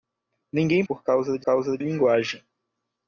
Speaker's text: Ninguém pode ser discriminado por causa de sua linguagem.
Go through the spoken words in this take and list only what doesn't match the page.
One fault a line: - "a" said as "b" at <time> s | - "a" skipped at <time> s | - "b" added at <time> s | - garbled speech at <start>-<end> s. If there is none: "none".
- "pode ser discriminado" skipped at 0.8 s
- "sua" said as "causa" at 1.4 s